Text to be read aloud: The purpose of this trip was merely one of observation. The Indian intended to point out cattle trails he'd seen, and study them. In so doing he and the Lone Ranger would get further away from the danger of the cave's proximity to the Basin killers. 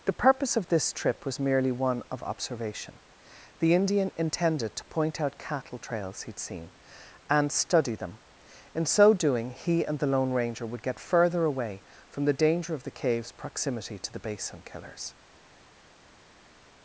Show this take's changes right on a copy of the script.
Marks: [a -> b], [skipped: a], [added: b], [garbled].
The purpose of this trip was merely one of observation. The Indian intended to point out cattle trails he'd seen, and study them. In so doing he and the Lone Ranger would get further away from the danger of the cave's proximity to the Basin killers.